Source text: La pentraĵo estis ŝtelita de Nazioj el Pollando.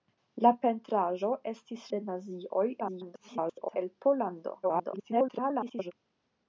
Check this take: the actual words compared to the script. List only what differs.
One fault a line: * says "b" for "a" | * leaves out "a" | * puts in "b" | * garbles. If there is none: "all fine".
* leaves out "ŝtelita"
* garbles
* garbles